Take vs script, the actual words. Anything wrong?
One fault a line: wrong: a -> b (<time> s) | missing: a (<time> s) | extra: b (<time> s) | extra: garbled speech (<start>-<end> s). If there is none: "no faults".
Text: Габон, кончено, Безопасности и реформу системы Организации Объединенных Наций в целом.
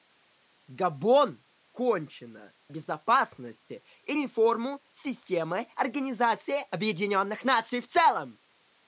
no faults